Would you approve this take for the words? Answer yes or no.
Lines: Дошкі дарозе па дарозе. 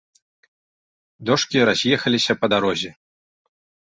no